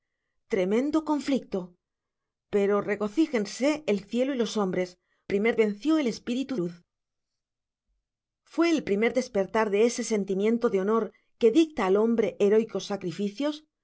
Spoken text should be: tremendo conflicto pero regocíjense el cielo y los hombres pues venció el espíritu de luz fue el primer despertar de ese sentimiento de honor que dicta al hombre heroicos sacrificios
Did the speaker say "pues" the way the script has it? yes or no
no